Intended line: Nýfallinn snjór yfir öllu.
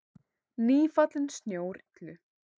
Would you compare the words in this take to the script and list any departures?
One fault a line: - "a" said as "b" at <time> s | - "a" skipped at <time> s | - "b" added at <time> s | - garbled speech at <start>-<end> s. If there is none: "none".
- "yfir" skipped at 1.8 s